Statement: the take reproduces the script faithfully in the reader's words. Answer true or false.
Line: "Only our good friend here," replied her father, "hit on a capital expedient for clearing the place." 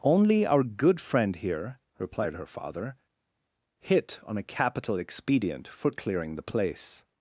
true